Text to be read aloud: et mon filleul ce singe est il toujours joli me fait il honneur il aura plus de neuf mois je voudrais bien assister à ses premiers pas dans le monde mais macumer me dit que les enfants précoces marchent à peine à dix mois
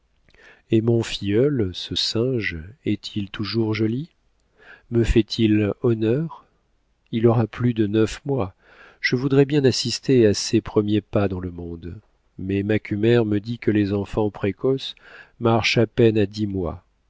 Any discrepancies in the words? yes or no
no